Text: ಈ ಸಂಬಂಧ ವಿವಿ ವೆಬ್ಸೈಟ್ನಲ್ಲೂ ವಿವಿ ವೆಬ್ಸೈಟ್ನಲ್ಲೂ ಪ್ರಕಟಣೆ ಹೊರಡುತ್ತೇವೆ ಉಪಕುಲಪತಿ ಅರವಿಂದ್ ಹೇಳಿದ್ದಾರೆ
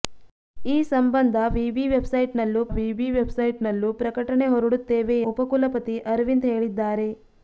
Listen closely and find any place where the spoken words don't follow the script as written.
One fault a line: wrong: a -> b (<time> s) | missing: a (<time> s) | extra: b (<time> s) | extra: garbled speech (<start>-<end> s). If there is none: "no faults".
no faults